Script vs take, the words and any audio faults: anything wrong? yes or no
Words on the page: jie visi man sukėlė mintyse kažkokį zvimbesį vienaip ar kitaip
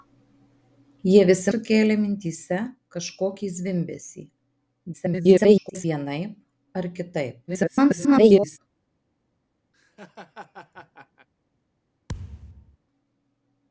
yes